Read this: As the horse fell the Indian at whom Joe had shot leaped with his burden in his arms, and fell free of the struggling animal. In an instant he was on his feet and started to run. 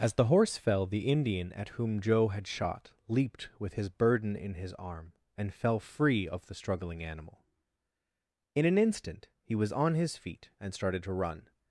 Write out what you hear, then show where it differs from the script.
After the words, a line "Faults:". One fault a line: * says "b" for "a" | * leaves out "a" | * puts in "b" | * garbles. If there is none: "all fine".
As the horse fell the Indian at whom Joe had shot leaped with his burden in his arm, and fell free of the struggling animal. In an instant he was on his feet and started to run.
Faults:
* says "arm" for "arms"